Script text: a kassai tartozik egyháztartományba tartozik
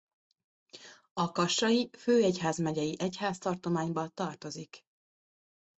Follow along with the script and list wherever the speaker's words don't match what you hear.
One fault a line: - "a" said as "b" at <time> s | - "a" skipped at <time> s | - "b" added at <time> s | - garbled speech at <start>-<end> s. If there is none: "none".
- "tartozik" said as "főegyházmegyei" at 2.0 s